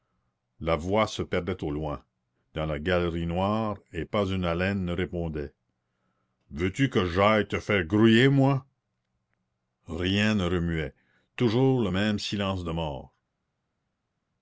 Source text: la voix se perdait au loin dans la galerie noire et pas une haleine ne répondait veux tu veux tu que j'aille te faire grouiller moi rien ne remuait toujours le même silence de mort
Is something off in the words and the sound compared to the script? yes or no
yes